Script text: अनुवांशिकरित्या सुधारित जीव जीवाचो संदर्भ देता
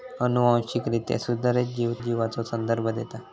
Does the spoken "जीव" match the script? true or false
true